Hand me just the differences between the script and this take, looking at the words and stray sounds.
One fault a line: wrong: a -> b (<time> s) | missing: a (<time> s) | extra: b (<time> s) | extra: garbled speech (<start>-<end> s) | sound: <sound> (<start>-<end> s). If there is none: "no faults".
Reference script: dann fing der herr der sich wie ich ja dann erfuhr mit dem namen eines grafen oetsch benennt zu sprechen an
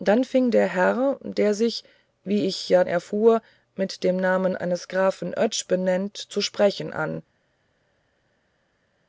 missing: dann (2.8 s)